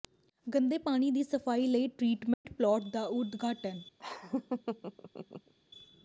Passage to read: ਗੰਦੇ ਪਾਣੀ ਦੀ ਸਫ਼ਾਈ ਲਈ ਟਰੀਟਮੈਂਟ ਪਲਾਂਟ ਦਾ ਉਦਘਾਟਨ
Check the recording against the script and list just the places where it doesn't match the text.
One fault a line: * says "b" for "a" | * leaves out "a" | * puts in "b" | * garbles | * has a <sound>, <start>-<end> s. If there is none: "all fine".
* has a dropout, 2.3-2.5 s
* has a laugh, 4.0-5.5 s